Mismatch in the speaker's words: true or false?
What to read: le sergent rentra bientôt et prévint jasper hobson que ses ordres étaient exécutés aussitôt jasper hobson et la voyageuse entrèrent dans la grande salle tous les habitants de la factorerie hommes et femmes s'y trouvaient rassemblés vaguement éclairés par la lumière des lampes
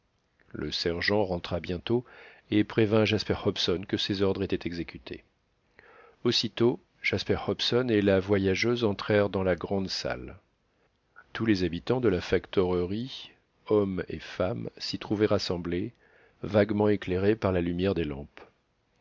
false